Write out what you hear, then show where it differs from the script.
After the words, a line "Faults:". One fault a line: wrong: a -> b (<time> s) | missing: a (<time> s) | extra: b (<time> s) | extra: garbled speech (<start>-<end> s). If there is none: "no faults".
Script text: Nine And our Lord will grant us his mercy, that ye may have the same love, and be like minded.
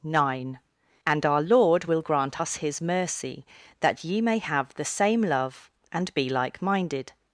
Nine And our Lord will grant us his mercy, that ye may have the same love, and be like minded.
Faults:
no faults